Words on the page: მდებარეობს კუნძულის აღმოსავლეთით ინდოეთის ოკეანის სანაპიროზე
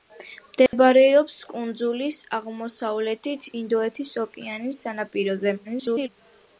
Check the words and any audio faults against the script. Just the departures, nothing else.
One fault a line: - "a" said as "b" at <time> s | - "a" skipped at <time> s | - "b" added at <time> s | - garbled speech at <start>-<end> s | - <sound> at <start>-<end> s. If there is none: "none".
- dropout at 0.7-0.7 s
- garbled speech at 5.6-6.1 s